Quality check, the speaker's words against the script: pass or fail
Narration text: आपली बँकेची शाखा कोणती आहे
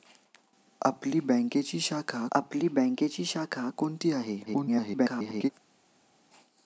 fail